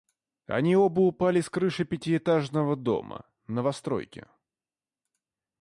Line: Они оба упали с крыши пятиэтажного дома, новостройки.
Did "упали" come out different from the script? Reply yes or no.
no